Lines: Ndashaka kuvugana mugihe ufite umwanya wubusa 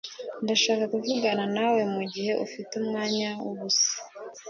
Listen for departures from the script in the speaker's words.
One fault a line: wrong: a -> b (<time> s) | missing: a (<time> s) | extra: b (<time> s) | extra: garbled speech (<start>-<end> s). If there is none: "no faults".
extra: nawe (1.6 s)